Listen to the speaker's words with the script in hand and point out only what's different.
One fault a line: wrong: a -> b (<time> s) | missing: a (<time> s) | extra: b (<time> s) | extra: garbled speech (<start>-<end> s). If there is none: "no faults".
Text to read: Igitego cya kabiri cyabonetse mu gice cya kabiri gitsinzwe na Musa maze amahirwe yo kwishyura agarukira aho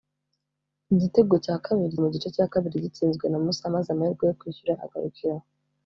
missing: cyabonetse (2.0 s)